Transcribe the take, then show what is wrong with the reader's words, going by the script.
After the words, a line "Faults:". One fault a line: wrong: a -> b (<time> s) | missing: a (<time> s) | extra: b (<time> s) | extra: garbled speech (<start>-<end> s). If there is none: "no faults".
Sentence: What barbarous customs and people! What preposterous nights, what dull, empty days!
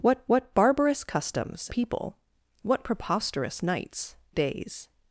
What what barbarous customs people! What preposterous nights, days!
Faults:
extra: what (0.3 s)
missing: and (1.7 s)
missing: what dull empty (4.2 s)